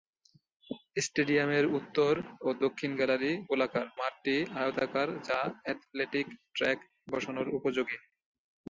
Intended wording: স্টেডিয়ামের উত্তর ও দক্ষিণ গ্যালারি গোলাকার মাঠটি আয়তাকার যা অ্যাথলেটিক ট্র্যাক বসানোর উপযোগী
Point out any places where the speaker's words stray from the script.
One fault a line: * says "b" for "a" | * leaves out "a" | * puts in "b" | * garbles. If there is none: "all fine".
all fine